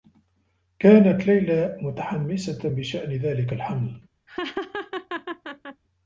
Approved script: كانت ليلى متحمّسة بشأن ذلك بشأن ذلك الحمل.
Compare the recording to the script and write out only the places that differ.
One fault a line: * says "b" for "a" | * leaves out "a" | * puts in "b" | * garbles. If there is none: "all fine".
* leaves out "بشأن ذلك"